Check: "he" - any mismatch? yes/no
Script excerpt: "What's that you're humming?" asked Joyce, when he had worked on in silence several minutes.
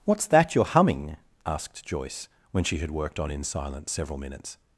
yes